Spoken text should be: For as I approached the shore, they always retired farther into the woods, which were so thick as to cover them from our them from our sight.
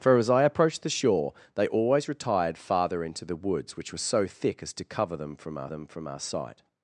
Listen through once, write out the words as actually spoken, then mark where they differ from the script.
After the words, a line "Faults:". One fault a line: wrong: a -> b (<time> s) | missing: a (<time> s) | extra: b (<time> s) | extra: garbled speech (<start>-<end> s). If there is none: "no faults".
For as I approached the shore, they always retired farther into the woods, which were so thick as to cover them from our them from our sight.
Faults:
no faults